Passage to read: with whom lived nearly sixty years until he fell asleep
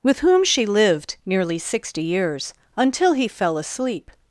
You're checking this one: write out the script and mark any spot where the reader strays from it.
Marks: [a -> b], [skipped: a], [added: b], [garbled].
with whom [added: she] lived nearly sixty years until he fell asleep